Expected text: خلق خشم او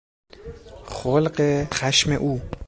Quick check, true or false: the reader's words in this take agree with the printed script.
true